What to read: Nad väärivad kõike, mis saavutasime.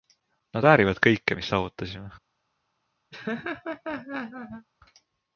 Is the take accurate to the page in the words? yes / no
yes